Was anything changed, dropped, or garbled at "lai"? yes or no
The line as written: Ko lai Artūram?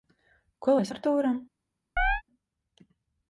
no